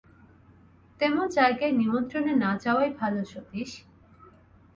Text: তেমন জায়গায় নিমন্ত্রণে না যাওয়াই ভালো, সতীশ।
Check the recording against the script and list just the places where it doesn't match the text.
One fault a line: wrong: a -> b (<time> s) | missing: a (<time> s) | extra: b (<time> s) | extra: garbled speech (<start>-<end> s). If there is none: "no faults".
no faults